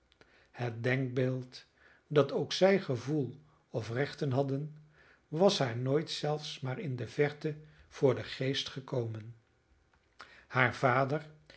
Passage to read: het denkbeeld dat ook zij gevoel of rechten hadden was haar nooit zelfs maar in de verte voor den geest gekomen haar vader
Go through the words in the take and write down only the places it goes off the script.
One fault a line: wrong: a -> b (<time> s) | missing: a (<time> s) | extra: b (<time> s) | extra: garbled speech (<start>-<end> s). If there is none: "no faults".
no faults